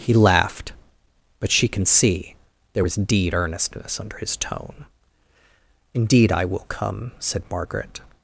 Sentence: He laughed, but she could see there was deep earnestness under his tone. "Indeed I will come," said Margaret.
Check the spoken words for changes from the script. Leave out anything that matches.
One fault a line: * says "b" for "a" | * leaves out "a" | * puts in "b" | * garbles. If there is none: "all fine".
* says "can" for "could"
* says "deed" for "deep"